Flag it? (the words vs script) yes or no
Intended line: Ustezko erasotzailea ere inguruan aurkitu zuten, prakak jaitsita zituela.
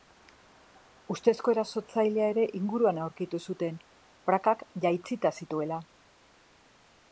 no